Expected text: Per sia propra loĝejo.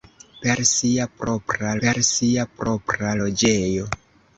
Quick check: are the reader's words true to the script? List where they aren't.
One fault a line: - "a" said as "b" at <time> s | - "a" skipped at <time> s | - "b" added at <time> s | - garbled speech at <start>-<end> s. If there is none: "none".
- "per sia propra" added at 1.8 s